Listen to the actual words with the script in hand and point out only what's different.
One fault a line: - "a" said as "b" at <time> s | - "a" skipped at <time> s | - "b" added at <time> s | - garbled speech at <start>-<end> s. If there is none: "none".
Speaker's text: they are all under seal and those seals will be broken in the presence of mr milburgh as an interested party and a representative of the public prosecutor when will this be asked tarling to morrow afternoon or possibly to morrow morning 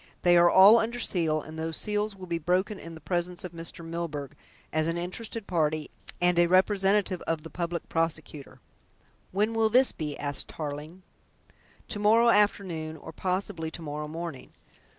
none